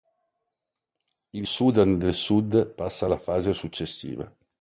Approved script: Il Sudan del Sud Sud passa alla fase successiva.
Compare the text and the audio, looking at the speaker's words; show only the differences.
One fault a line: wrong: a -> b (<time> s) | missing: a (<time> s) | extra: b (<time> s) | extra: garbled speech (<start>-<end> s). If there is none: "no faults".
missing: Sud (2.7 s)